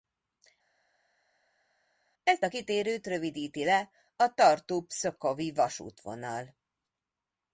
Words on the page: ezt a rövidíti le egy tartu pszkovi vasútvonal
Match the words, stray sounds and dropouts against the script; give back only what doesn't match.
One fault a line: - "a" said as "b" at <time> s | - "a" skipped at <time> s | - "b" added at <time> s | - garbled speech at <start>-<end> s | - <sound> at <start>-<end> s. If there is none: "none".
- "kitérőt" added at 2.5 s
- "egy" said as "a" at 4.2 s